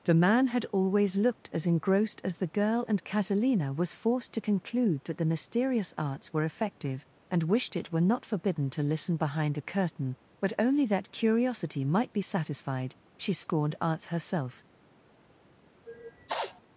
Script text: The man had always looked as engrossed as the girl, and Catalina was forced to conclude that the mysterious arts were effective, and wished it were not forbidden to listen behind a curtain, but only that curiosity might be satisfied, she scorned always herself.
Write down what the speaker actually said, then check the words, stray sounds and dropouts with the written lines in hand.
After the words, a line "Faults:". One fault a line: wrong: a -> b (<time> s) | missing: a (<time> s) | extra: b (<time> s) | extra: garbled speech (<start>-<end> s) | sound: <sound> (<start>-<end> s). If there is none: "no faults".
The man had always looked as engrossed as the girl, and Catalina was forced to conclude that the mysterious arts were effective, and wished it were not forbidden to listen behind a curtain, but only that curiosity might be satisfied, she scorned arts herself.
Faults:
wrong: always -> arts (13.8 s)
sound: sniff (15.9-16.6 s)